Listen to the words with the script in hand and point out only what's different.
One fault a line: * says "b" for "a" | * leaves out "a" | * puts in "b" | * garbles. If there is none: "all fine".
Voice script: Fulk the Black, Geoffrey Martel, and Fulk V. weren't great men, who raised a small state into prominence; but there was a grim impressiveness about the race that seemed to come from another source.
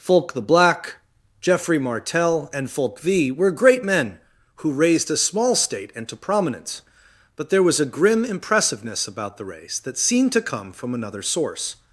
* says "were" for "weren't"